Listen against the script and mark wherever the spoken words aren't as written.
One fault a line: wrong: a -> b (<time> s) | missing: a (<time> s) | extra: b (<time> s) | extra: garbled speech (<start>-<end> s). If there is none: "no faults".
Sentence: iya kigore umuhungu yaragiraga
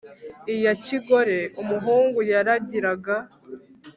no faults